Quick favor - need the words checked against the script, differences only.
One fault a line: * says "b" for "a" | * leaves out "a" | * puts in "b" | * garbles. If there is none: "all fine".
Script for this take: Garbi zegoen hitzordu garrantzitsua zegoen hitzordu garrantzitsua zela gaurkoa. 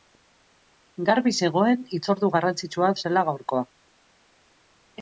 * leaves out "zegoen hitzordu garrantzitsua"